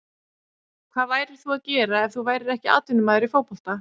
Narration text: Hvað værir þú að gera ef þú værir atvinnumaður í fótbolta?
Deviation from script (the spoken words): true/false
true